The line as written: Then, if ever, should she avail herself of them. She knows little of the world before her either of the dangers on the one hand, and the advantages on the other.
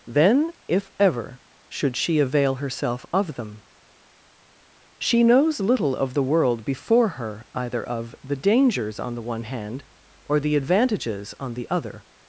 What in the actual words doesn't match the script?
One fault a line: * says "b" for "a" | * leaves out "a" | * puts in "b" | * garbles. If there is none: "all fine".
* says "or" for "and"